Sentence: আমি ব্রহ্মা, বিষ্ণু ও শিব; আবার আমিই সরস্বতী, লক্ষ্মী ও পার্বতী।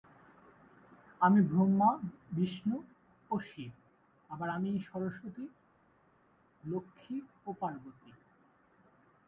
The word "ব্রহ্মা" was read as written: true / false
true